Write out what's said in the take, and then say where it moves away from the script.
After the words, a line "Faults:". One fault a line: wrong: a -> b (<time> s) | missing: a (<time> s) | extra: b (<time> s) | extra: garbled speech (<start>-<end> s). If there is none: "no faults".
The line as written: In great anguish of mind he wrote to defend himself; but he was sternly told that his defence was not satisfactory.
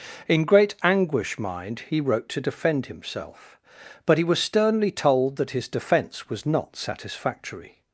In great anguish mind he wrote to defend himself; but he was sternly told that his defence was not satisfactory.
Faults:
missing: of (1.4 s)